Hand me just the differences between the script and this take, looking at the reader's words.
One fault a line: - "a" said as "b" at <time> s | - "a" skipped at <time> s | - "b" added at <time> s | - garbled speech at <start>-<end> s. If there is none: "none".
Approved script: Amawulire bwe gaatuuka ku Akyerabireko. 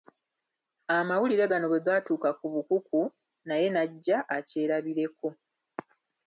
- "gano" added at 1.5 s
- "Bukuku naye n'ajja" added at 2.5 s